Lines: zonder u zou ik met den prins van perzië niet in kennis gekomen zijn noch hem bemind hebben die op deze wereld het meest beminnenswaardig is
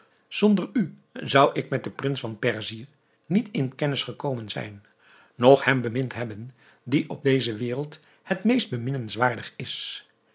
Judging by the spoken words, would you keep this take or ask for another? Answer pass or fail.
pass